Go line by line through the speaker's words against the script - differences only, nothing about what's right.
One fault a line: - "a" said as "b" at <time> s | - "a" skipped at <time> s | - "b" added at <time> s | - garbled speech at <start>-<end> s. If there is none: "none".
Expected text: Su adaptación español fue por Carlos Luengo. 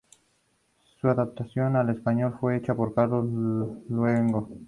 - "al" added at 1.7 s
- "hecha" added at 2.5 s